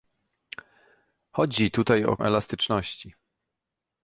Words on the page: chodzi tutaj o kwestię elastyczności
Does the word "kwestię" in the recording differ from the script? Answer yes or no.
yes